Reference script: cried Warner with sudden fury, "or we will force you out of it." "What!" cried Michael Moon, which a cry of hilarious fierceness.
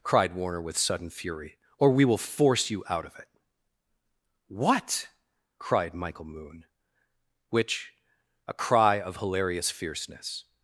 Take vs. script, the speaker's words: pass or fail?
pass